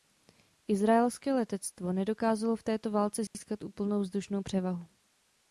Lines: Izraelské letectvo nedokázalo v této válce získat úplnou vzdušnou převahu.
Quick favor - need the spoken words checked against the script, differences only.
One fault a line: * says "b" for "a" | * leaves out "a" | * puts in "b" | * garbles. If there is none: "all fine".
all fine